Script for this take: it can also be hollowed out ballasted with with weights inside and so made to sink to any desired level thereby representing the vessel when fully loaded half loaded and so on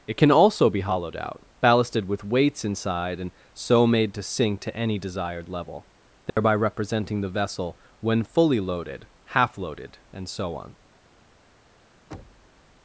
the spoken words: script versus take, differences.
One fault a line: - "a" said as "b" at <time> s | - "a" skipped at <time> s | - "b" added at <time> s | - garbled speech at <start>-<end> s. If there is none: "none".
- "with" skipped at 2.2 s